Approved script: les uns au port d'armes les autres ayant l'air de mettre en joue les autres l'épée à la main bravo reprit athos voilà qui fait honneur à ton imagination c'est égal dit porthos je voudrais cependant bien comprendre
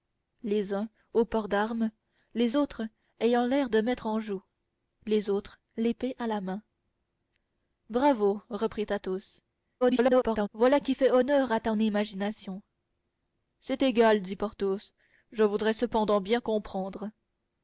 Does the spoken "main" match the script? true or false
true